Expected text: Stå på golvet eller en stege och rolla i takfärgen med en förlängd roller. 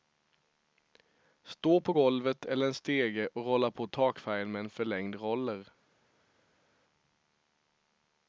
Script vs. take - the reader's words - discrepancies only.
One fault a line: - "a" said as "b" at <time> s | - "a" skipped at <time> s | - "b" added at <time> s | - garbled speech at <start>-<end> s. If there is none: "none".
- "i" said as "på" at 3.7 s